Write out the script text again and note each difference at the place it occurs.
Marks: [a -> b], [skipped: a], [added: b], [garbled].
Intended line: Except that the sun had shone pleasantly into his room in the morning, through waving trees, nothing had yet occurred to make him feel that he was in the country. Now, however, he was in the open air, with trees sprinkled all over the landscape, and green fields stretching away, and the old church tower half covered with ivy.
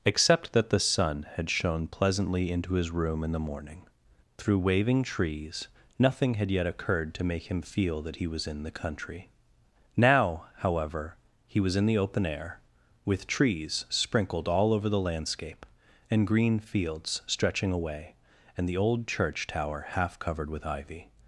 Except that the sun had shone pleasantly into his room in the morning, through waving trees, nothing had yet occurred to make him feel that he was in the country. Now, however, he was in the open air, with trees sprinkled all over the landscape, and green fields stretching away, and the old church tower half covered with ivy.